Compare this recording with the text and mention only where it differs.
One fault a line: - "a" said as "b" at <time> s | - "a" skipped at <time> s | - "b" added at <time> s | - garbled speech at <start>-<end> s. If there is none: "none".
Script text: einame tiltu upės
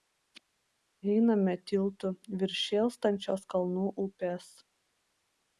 - "virš šėlstančios kalnų" added at 2.4 s